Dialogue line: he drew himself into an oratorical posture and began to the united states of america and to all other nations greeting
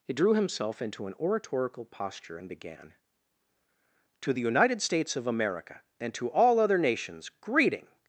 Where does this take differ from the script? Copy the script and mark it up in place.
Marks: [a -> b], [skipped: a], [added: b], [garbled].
he drew himself into an oratorical posture and began to the united states of america and to all other nations greeting